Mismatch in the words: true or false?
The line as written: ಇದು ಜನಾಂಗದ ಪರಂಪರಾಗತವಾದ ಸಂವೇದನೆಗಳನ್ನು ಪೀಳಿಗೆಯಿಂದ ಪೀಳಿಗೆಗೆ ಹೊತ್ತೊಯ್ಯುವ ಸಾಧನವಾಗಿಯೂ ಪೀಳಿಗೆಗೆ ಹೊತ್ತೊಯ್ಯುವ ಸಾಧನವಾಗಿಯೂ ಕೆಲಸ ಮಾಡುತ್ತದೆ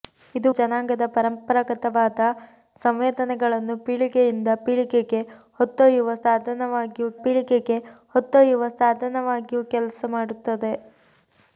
false